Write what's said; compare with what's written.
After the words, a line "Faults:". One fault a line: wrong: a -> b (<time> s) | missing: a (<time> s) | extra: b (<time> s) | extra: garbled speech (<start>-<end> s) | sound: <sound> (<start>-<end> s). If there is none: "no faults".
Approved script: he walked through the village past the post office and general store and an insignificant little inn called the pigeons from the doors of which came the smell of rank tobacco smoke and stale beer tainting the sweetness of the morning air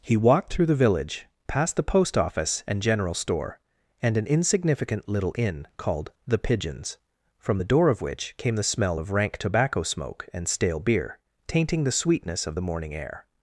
he walked through the village past the post office and general store and an insignificant little inn called the pigeons from the door of which came the smell of rank tobacco smoke and stale beer tainting the sweetness of the morning air
Faults:
wrong: doors -> door (7.7 s)